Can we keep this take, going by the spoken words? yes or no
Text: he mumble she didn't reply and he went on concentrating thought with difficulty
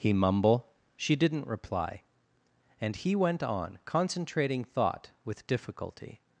yes